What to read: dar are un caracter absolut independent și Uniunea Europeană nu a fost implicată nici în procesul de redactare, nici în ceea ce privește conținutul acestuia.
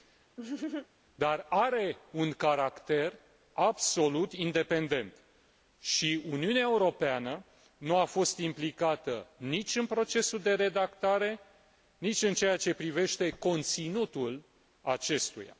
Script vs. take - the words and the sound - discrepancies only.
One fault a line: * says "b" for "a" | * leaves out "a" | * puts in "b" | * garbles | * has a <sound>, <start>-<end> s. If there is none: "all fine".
* has a laugh, 0.4-0.9 s